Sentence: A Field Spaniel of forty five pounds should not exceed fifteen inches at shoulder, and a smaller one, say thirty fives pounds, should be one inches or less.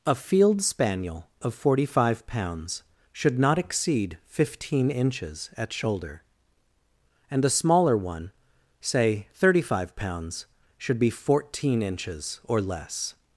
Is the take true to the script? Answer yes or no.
no